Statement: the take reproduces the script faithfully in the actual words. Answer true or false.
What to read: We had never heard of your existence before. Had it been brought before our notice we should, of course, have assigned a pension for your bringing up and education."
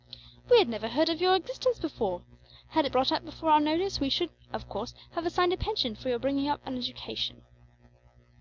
false